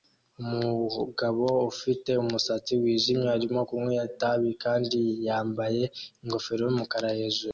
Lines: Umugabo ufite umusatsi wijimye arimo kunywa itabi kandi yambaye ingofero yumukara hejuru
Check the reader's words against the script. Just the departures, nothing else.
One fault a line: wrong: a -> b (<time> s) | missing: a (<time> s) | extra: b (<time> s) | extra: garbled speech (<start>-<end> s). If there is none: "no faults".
no faults